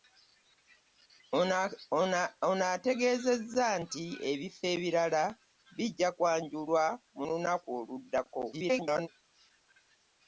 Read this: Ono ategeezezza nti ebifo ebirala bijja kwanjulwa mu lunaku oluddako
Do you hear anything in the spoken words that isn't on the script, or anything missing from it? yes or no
yes